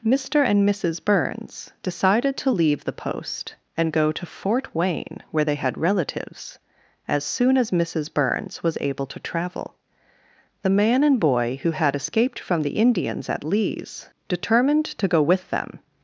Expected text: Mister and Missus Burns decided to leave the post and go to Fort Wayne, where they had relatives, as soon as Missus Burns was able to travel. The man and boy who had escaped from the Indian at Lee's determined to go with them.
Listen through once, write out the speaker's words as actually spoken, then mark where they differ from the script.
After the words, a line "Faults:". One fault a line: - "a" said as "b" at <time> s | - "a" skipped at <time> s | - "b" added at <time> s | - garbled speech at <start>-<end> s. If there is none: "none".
Mister and Missus Burns decided to leave the post and go to Fort Wayne, where they had relatives, as soon as Missus Burns was able to travel. The man and boy who had escaped from the Indians at Lee's determined to go with them.
Faults:
- "Indian" said as "Indians" at 12.8 s